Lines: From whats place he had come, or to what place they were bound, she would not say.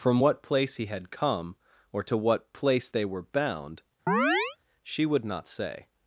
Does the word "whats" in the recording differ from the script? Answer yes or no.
yes